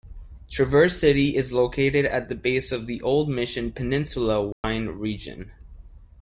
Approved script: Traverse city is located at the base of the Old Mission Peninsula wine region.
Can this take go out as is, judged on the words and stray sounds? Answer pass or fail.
fail